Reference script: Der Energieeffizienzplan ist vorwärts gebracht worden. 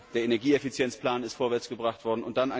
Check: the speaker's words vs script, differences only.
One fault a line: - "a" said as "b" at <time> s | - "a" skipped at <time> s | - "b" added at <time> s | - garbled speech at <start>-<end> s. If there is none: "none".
none